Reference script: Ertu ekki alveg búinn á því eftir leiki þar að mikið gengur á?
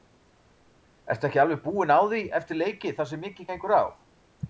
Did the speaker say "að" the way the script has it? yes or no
no